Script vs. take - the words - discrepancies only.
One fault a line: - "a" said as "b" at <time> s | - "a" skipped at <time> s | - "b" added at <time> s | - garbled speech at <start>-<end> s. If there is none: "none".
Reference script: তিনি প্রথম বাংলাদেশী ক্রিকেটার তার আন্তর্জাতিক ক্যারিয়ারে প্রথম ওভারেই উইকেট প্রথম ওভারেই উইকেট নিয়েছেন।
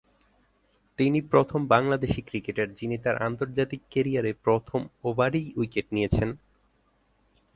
- "যিনি" added at 2.7 s
- "প্রথম ওভারেই উইকেট" skipped at 5.9 s